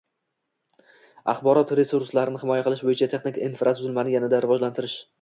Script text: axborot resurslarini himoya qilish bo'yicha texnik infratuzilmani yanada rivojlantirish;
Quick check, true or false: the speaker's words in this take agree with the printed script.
true